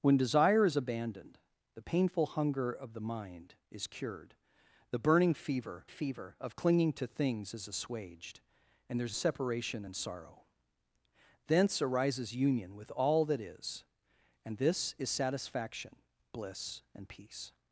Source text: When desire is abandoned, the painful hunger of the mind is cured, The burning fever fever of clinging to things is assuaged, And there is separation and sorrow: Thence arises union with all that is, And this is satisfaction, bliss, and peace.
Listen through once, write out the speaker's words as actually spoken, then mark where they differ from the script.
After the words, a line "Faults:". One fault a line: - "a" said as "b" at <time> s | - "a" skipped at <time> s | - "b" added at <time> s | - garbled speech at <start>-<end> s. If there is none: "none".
When desire is abandoned, the painful hunger of the mind is cured, The burning fever fever of clinging to things is assuaged, And there is separation and sorrow: Thence arises union with all that is, And this is satisfaction, bliss, and peace.
Faults:
none